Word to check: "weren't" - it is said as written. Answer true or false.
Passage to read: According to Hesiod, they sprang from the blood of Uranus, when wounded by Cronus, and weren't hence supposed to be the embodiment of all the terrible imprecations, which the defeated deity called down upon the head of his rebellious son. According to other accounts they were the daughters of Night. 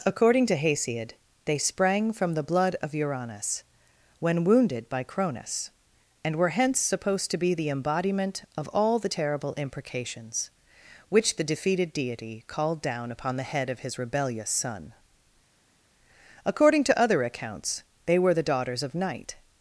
false